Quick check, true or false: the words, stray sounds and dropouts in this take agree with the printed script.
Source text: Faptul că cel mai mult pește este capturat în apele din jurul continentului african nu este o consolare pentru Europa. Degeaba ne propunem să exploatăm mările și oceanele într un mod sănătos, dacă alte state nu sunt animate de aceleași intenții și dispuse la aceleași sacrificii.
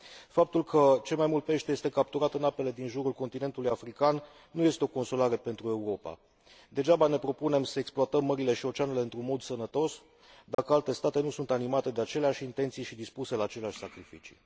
false